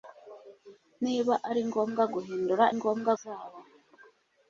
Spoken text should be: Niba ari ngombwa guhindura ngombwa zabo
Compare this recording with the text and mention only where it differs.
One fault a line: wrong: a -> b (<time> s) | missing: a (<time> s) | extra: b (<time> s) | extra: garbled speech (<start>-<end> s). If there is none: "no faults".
no faults